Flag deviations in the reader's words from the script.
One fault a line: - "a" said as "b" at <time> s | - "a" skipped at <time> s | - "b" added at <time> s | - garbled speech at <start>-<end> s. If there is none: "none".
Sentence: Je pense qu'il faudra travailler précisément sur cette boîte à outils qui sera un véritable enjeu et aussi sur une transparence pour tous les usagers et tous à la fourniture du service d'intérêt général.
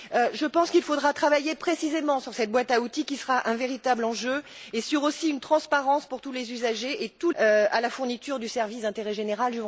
none